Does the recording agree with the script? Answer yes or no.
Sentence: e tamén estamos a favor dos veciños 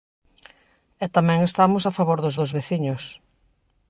no